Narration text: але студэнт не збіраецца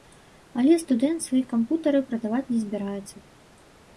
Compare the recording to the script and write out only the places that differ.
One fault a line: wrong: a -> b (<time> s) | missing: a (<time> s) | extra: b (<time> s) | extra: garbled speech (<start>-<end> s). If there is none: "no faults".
extra: свае кампутары прадаваць (1.2 s)